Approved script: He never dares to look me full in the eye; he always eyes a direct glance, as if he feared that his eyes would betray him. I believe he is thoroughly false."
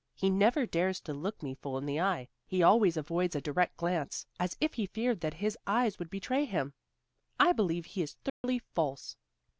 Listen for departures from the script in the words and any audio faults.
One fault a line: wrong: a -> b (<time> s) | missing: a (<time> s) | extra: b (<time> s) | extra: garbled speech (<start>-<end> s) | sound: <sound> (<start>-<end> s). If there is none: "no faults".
wrong: eyes -> avoids (3.0 s)
sound: dropout (8.3-8.4 s)